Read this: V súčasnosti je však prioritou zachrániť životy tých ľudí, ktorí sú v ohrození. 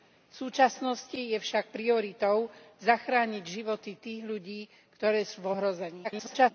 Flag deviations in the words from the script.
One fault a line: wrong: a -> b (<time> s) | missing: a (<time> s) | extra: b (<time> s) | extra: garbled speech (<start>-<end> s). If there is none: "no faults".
extra: garbled speech (6.0-6.5 s)